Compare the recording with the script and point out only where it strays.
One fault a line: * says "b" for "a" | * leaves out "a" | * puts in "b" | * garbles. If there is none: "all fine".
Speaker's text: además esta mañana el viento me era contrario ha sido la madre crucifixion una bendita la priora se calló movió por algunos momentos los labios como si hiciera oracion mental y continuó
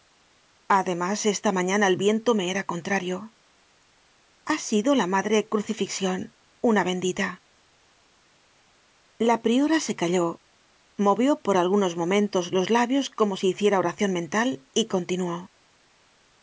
all fine